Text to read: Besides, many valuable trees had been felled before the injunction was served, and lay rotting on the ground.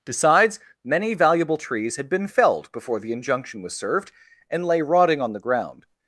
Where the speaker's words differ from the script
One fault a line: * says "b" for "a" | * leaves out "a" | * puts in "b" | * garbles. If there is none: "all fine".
all fine